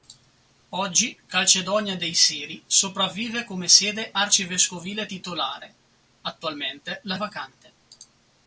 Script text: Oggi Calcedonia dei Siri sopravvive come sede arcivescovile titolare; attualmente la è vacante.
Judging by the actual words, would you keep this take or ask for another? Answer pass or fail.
pass